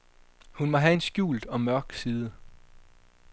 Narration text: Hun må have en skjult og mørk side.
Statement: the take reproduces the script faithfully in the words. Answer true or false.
true